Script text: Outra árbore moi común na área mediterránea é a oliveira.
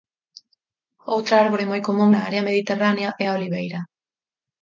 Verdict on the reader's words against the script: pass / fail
pass